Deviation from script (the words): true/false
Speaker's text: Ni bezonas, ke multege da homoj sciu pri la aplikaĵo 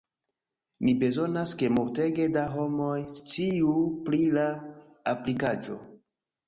false